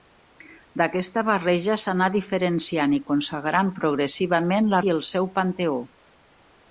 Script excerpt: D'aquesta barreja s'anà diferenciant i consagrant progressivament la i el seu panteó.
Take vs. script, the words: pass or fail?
pass